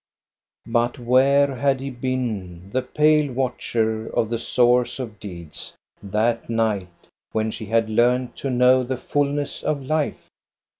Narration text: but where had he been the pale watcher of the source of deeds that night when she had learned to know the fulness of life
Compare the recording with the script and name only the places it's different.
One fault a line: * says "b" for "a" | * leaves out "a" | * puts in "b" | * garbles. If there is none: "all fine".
all fine